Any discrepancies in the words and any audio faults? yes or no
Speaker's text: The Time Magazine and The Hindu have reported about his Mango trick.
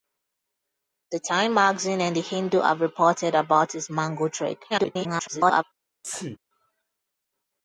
yes